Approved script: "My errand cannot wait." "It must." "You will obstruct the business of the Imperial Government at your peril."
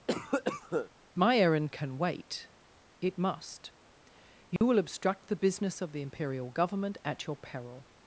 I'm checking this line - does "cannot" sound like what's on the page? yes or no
no